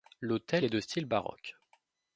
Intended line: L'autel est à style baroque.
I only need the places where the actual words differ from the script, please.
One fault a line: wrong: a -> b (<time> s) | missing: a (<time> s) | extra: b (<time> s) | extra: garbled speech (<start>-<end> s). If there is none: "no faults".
wrong: à -> de (0.7 s)